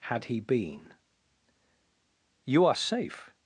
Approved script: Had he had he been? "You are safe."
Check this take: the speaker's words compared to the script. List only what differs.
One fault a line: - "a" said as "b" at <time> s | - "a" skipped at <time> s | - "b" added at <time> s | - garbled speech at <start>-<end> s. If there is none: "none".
- "had he" skipped at 0.4 s